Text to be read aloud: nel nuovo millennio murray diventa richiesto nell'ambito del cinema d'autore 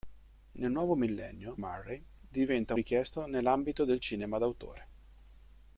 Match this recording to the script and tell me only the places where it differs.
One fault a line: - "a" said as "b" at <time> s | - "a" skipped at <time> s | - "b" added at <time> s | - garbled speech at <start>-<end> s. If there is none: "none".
none